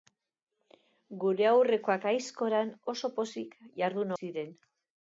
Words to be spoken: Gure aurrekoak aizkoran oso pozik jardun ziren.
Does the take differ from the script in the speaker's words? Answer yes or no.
no